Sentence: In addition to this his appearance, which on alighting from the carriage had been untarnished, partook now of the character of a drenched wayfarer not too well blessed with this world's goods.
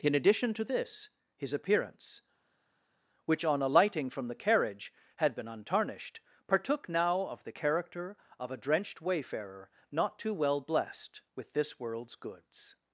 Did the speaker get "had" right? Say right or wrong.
right